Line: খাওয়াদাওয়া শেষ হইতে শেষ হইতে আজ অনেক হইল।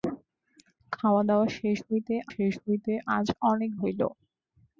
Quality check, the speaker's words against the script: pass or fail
pass